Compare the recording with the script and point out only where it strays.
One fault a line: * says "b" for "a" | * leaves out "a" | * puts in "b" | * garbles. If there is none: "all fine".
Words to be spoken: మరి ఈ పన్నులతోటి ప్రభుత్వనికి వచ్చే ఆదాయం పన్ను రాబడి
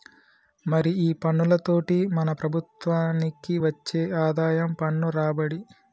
* puts in "మన"